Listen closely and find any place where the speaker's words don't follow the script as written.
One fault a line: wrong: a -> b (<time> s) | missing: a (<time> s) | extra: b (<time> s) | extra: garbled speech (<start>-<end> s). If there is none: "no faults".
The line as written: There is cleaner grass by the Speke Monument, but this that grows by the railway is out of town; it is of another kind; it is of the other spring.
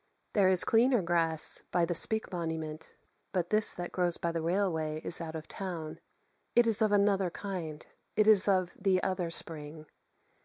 no faults